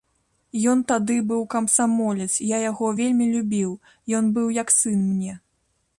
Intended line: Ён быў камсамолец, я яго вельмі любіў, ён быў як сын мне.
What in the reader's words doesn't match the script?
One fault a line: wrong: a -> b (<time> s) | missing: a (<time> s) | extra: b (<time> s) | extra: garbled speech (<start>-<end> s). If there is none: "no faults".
extra: тады (0.9 s)